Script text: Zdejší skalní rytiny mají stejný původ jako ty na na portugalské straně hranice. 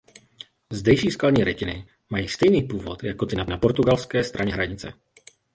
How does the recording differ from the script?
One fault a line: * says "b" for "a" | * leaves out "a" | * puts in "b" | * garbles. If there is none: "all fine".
all fine